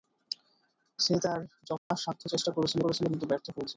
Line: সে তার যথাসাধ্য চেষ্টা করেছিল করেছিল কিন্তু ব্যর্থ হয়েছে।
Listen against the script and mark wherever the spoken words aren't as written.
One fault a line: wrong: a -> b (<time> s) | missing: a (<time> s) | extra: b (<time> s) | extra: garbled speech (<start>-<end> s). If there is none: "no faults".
no faults